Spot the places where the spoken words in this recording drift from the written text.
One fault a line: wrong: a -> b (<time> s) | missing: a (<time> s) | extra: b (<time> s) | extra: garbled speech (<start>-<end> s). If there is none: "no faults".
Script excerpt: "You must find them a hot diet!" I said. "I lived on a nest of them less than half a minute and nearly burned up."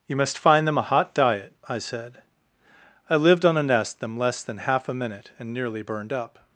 missing: of (4.0 s)